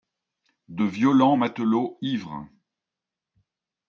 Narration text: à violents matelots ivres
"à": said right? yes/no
no